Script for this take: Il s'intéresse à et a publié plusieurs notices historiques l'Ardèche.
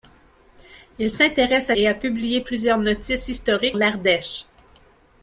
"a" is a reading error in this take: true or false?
false